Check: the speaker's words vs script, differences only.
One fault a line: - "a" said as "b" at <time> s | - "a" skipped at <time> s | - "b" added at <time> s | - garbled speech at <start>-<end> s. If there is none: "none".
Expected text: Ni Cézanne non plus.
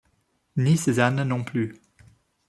none